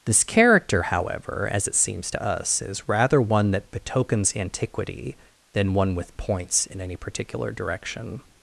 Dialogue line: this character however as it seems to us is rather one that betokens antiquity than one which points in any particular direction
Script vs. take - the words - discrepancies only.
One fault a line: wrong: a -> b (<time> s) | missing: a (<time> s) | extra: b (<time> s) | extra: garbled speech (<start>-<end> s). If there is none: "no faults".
wrong: which -> with (5.9 s)